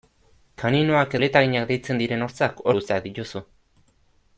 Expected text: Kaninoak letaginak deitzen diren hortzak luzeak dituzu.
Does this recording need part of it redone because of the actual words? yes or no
no